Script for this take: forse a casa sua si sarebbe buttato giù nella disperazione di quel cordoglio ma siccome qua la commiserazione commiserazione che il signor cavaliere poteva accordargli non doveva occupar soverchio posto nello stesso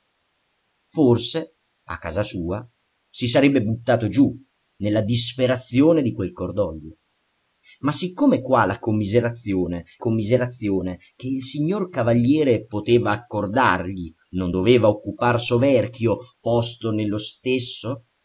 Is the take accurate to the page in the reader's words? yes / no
yes